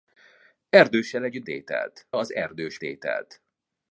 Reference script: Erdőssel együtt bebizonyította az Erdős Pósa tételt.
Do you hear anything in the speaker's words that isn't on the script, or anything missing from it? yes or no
yes